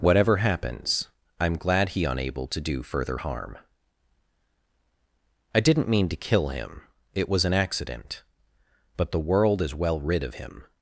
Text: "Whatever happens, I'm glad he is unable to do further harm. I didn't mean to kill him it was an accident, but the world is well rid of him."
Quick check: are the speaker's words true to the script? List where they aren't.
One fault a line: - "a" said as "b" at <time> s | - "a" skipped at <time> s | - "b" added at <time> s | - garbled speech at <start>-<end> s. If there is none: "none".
- "is" skipped at 2.0 s